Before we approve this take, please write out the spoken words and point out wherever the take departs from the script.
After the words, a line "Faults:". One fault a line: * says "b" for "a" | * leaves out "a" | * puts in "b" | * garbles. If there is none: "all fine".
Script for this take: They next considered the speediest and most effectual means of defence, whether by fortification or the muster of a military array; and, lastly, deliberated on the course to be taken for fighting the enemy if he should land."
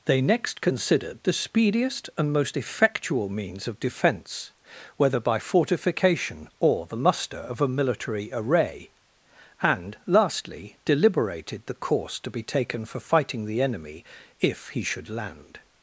They next considered the speediest and most effectual means of defence, whether by fortification or the muster of a military array; and, lastly, deliberated the course to be taken for fighting the enemy if he should land."
Faults:
* leaves out "on"